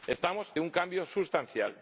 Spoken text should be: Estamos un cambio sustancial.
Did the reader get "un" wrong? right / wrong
right